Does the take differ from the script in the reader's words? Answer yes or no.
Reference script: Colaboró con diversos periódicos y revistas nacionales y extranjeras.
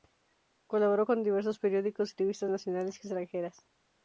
no